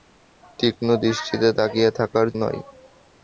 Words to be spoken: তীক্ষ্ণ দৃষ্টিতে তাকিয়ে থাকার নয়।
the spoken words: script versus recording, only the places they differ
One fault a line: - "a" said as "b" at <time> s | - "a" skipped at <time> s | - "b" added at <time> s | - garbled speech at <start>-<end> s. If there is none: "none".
none